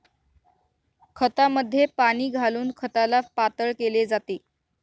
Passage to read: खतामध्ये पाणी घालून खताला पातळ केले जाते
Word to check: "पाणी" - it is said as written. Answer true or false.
true